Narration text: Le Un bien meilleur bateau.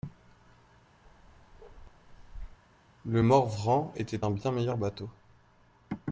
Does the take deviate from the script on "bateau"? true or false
false